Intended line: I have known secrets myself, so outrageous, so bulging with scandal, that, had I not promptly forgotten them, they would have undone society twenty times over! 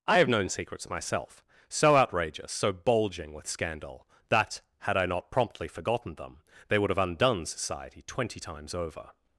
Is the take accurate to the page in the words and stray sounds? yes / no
yes